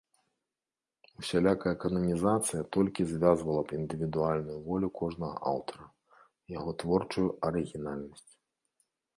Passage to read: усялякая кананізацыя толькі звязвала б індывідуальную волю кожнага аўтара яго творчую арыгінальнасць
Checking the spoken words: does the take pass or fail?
pass